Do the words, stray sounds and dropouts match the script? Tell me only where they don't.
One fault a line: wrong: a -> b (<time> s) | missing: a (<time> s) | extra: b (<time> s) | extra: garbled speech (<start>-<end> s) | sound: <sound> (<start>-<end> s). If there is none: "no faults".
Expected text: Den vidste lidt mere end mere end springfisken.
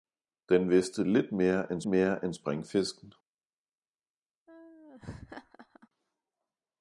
sound: laugh (4.5-5.9 s)